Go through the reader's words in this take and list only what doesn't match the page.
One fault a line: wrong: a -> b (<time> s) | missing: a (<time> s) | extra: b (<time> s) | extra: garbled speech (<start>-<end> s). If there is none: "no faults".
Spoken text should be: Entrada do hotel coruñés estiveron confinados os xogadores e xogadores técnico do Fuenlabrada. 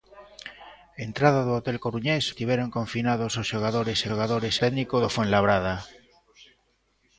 no faults